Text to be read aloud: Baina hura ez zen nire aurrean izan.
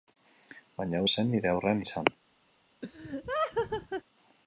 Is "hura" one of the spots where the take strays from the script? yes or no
yes